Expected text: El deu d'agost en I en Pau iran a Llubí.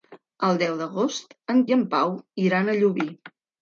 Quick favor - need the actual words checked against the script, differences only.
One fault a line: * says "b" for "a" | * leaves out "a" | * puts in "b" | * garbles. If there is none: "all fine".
all fine